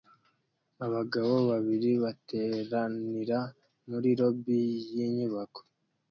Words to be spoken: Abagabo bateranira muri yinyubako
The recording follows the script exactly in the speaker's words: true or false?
false